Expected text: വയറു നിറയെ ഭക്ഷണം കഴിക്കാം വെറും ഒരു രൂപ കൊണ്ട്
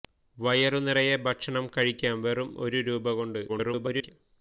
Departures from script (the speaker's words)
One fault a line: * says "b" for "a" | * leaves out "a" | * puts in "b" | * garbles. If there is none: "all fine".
* garbles